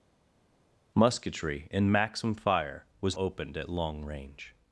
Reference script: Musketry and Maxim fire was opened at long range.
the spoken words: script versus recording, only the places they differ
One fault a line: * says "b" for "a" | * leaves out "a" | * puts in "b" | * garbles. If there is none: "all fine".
all fine